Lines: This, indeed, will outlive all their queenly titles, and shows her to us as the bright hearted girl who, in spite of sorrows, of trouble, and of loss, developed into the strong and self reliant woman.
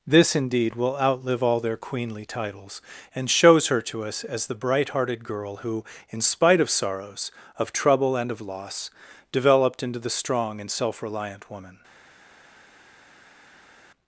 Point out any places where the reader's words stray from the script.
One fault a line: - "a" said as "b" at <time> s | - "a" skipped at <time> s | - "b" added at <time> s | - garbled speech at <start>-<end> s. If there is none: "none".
none